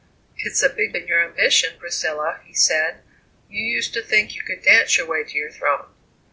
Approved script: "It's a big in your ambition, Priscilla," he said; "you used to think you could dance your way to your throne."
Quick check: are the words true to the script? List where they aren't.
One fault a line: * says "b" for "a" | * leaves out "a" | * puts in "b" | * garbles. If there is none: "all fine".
all fine